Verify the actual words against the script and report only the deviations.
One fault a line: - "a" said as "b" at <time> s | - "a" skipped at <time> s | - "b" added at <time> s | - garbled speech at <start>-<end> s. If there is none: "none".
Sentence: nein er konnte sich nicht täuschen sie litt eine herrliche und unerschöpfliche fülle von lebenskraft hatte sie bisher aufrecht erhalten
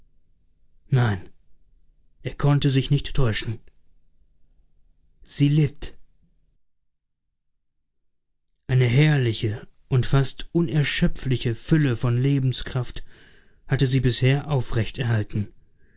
- "fast" added at 10.1 s